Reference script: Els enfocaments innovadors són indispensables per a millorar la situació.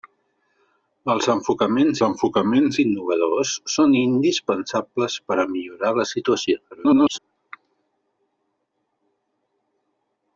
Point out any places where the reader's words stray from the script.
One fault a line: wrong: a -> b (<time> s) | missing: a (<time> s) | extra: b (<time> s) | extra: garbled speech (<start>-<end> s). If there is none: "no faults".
extra: enfocaments (2.1 s)
extra: garbled speech (6.7-7.2 s)